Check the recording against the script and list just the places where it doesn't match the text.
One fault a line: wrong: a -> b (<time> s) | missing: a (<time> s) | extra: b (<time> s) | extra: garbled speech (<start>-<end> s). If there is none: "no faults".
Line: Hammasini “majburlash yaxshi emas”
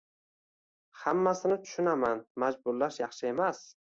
extra: tushunaman (1.7 s)